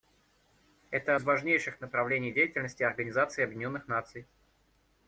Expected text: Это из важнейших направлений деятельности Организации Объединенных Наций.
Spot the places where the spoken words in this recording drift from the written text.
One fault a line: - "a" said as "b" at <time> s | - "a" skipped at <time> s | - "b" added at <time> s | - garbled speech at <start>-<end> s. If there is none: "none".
none